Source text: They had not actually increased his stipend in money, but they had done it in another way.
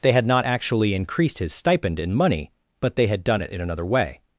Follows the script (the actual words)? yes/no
yes